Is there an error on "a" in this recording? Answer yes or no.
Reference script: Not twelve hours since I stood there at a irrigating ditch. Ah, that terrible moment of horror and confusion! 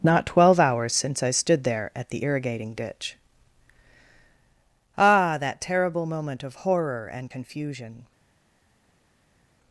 yes